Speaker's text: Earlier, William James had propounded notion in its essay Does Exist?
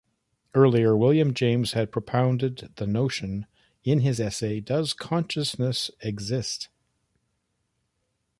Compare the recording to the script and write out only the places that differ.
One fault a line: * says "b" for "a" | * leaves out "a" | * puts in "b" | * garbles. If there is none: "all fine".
* puts in "the"
* says "his" for "its"
* puts in "Consciousness"